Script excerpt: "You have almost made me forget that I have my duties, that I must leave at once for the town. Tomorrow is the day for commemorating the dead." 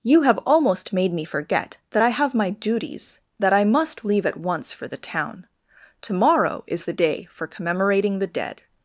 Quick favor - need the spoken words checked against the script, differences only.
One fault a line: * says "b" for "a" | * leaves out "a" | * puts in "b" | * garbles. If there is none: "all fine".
all fine